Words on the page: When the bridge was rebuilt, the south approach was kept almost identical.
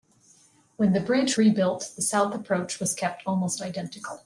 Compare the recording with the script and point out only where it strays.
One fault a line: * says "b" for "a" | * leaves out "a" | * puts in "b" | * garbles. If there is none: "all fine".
* leaves out "was"